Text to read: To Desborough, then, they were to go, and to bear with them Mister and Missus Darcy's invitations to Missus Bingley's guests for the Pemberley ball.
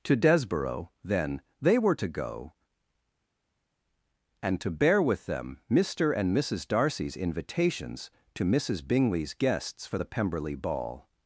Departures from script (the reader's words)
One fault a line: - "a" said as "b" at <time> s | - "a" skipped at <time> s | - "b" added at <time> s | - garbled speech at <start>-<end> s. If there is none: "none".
none